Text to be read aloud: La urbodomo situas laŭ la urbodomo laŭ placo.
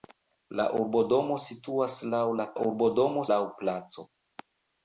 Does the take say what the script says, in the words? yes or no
yes